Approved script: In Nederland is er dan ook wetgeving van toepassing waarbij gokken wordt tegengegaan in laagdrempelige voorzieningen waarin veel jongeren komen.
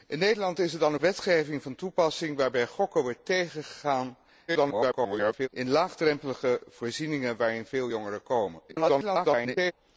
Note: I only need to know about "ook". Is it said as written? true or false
false